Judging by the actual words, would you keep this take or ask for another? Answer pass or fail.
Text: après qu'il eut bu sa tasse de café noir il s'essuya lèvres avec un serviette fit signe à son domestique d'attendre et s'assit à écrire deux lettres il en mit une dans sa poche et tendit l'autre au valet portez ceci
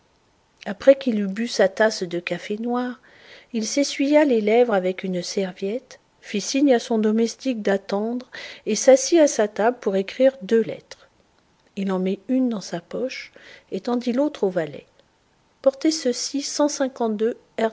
fail